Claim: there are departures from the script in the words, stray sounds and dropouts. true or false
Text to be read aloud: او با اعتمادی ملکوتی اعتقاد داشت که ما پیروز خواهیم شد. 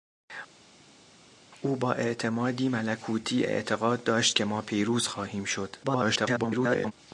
true